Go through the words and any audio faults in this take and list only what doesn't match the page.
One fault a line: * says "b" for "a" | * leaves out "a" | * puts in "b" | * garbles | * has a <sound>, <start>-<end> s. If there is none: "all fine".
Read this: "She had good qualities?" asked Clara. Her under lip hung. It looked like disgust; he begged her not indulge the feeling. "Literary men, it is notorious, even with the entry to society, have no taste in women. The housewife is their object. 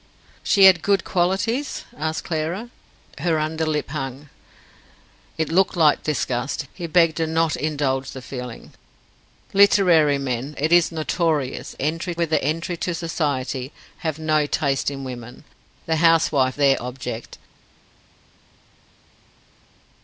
* says "entry" for "even"
* leaves out "is"